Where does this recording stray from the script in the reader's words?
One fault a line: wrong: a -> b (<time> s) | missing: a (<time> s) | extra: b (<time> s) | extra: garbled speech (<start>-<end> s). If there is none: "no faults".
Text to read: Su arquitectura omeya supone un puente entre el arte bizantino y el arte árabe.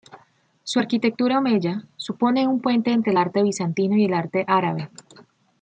no faults